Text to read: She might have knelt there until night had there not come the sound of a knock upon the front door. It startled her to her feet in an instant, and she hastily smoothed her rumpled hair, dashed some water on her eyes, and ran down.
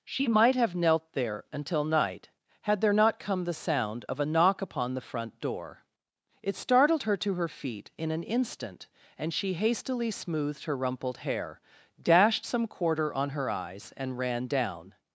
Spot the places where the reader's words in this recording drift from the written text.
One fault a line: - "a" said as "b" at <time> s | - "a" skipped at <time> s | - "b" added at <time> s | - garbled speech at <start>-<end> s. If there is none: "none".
- "water" said as "quarter" at 12.7 s